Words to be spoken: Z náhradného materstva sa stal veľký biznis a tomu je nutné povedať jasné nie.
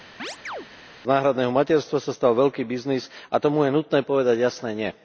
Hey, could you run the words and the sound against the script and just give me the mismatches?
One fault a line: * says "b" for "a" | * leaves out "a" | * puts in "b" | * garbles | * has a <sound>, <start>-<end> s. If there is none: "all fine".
* has a chirp, 0.2-0.7 s